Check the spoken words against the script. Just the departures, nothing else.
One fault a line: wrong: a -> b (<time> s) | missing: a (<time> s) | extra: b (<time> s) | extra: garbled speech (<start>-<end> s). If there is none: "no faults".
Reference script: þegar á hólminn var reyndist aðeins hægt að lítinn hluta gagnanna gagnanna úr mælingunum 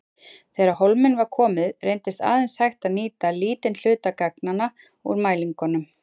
extra: komið (1.4 s)
extra: nýta (3.0 s)
missing: gagnanna (4.7 s)